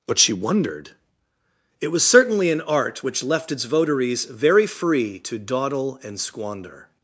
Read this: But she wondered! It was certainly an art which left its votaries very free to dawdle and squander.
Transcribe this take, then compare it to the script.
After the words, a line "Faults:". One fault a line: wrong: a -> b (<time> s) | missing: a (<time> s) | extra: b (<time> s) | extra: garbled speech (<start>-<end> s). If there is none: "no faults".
But she wondered! It was certainly an art which left its votaries very free to dawdle and squander.
Faults:
no faults